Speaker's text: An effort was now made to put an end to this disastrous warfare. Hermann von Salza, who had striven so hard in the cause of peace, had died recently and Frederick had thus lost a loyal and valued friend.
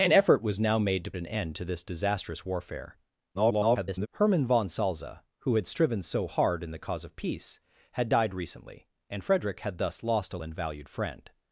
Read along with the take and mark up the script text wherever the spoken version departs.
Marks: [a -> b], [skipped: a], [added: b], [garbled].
An effort was now made to [skipped: put] an end to this disastrous warfare. [garbled] Hermann von Salza, who had striven so hard in the cause of peace, had died recently and Frederick had thus lost a [skipped: loyal] and valued friend.